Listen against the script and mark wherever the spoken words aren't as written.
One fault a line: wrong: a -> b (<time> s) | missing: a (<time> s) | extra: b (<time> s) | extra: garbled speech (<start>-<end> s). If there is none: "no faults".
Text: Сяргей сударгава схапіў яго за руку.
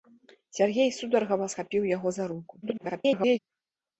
extra: garbled speech (2.6-3.4 s)